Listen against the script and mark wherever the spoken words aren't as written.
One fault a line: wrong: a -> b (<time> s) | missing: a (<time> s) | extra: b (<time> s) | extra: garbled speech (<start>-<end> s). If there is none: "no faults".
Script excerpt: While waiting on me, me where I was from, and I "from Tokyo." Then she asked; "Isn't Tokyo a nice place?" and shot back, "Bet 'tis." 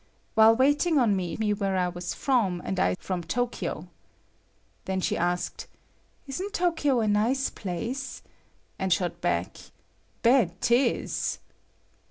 no faults